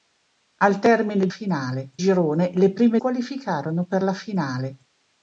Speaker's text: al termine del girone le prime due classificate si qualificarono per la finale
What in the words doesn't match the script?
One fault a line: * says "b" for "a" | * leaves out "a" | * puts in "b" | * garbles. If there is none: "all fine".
* says "finale" for "del"
* leaves out "due classificate si"